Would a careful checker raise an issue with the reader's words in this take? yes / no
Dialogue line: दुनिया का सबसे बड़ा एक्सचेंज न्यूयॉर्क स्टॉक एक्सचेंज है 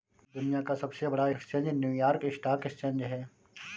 no